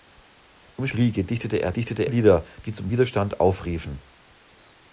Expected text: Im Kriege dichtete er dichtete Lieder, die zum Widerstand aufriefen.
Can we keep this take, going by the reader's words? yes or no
yes